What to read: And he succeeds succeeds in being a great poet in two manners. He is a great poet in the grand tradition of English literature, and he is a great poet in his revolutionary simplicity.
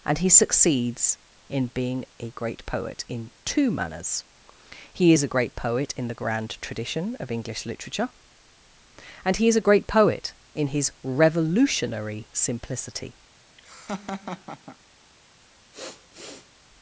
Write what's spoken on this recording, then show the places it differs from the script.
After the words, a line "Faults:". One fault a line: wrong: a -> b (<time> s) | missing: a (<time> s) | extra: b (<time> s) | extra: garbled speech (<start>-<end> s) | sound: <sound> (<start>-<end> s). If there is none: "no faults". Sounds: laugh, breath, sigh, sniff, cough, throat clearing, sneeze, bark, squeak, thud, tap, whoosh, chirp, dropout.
And he succeeds in being a great poet in two manners. He is a great poet in the grand tradition of English literature, and he is a great poet in his revolutionary simplicity.
Faults:
missing: succeeds (1.2 s)
sound: laugh (13.6-14.8 s)
sound: sniff (15.7-16.5 s)